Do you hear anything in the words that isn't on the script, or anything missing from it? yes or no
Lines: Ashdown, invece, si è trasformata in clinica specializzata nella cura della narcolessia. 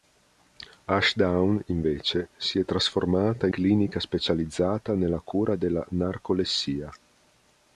no